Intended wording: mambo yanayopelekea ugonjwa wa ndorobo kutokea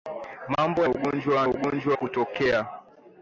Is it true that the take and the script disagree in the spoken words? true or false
true